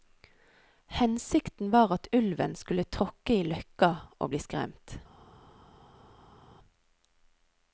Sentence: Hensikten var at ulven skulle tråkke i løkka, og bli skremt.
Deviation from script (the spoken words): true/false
false